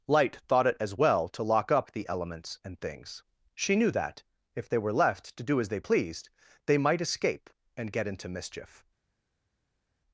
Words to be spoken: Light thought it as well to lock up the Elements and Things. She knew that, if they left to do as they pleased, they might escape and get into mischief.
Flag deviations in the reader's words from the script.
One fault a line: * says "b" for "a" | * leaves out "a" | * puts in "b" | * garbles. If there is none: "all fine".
* puts in "were"